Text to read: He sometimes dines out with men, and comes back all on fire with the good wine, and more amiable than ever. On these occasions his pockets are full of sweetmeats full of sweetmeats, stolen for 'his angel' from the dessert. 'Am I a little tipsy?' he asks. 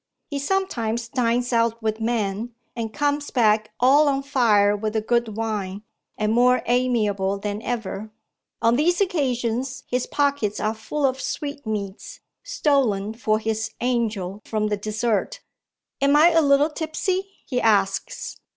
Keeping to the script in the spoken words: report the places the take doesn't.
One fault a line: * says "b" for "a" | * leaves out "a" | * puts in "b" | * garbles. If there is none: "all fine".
* leaves out "full of sweetmeats"